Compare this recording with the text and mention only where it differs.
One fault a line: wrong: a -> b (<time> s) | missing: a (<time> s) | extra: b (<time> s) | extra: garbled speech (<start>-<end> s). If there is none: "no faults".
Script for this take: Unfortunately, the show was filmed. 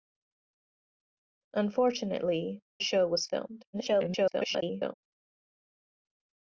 missing: the (2.6 s)
extra: garbled speech (3.7-4.9 s)